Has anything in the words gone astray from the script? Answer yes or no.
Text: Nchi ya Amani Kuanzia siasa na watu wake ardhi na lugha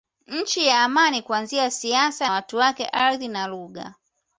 yes